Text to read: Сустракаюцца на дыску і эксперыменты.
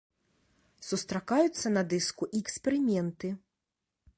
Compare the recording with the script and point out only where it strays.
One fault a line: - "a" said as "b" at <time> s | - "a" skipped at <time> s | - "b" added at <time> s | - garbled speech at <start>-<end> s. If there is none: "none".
none